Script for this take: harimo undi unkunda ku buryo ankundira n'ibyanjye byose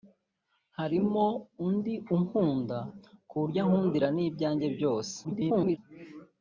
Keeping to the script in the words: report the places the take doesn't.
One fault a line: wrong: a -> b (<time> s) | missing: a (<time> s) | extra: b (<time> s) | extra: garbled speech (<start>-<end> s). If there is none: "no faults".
extra: garbled speech (5.2-5.8 s)